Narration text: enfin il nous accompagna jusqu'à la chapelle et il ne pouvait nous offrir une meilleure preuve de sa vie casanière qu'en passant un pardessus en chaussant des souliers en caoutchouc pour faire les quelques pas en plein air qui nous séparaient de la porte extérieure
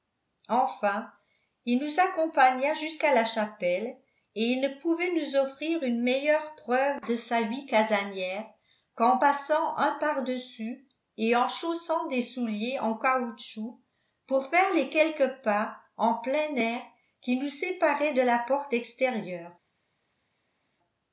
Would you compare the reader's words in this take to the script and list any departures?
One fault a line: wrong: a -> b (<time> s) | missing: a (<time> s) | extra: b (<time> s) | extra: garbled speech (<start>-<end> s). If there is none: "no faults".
extra: et (11.2 s)